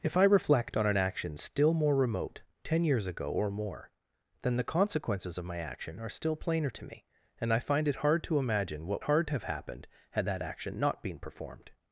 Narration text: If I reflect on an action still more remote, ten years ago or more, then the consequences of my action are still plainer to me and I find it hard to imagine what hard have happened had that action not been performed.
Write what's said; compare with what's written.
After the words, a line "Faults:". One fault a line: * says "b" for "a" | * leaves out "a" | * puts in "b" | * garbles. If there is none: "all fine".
If I reflect on an action still more remote, ten years ago or more, then the consequences of my action are still plainer to me and I find it hard to imagine what hard have happened had that action not been performed.
Faults:
all fine